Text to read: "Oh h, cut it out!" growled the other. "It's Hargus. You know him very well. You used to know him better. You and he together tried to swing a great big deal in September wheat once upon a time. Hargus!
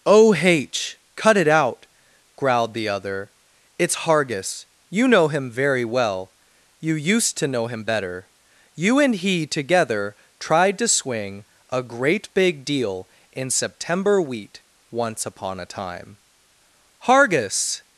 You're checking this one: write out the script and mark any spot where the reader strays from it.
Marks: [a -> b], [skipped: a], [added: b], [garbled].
"Oh h, cut it out!" growled the other. "It's Hargus. You know him very well. You used to know him better. You and he together tried to swing a great big deal in September wheat once upon a time. Hargus!